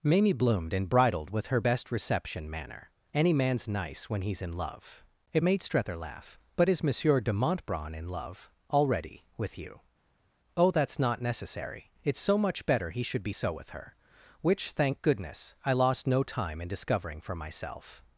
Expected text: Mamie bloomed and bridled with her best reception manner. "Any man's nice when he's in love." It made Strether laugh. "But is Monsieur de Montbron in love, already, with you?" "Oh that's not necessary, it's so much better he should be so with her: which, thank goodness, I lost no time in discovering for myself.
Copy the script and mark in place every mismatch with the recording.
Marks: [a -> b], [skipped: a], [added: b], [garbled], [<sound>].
Mamie bloomed and bridled with her best reception manner. "Any man's nice when he's in love." It made Strether laugh. "But is Monsieur de Montbron in love, already, with you?" "Oh that's not necessary, it's so much better he should be so with her: which, thank goodness, I lost no time in discovering for myself.